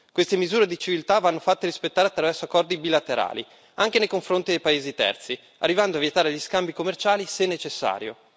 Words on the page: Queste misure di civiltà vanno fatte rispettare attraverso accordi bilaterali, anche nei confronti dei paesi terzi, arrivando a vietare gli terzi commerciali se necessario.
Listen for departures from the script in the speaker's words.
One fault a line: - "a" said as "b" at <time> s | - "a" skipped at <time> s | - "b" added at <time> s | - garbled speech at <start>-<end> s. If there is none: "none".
- "terzi" said as "scambi" at 6.4 s